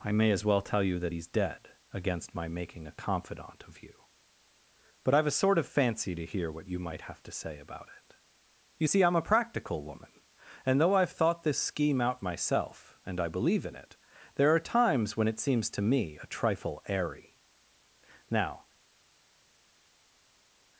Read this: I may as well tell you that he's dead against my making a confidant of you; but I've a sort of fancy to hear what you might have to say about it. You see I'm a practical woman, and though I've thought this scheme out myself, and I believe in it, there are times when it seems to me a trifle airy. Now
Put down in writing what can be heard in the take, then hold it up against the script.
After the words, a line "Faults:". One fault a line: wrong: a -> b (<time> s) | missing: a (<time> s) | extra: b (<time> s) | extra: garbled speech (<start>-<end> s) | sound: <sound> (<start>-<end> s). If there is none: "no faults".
I may as well tell you that he's dead against my making a confidant of you; but I've a sort of fancy to hear what you might have to say about it. You see I'm a practical woman, and though I've thought this scheme out myself, and I believe in it, there are times when it seems to me a trifle airy. Now
Faults:
no faults